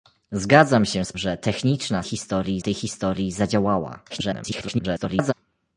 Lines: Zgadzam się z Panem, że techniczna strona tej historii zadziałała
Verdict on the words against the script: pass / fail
fail